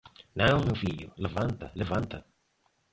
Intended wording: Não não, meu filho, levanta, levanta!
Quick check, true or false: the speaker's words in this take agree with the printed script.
false